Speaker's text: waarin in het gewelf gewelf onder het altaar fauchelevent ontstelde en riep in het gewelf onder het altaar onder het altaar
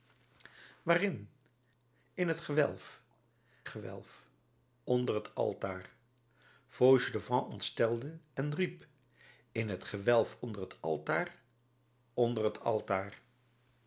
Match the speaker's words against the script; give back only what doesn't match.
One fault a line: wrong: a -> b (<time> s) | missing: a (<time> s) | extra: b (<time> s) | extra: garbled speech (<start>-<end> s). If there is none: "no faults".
no faults